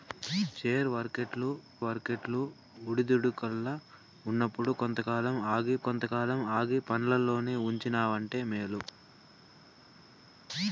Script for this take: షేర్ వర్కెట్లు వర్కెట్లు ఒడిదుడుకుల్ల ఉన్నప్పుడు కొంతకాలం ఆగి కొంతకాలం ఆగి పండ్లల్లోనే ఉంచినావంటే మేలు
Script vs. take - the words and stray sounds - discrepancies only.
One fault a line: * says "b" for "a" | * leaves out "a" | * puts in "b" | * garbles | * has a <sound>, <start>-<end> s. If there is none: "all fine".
all fine